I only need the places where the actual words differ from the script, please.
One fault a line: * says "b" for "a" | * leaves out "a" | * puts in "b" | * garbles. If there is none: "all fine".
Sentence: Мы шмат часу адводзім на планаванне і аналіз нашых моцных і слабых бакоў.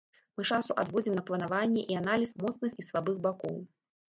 * leaves out "шмат"
* leaves out "нашых"